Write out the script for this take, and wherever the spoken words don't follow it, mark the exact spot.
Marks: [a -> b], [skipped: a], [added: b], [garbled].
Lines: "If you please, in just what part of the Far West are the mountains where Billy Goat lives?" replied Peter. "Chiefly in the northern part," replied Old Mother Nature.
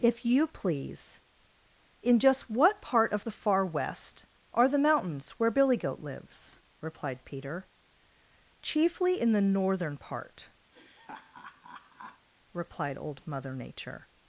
"If you please, in just what part of the Far West are the mountains where Billy Goat lives?" replied Peter. "Chiefly in the northern part," replied Old Mother Nature.